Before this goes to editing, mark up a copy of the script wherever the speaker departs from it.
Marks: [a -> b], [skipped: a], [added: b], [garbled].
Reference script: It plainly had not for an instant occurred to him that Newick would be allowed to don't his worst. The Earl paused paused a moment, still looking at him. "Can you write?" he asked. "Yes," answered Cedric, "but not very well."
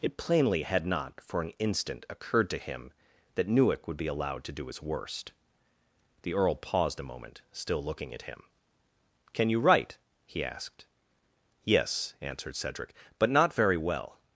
It plainly had not for an instant occurred to him that Newick would be allowed to [don't -> do] his worst. The Earl paused [skipped: paused] a moment, still looking at him. "Can you write?" he asked. "Yes," answered Cedric, "but not very well."